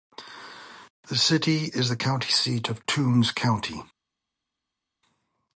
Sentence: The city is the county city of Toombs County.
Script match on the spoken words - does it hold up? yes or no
no